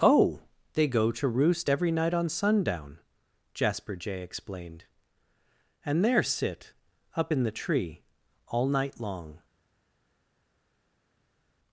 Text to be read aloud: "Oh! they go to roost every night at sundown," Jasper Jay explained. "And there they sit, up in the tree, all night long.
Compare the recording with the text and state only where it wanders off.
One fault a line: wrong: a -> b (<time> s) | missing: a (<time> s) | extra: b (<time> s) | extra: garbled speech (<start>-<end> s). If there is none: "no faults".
wrong: at -> on (2.1 s)
missing: they (6.2 s)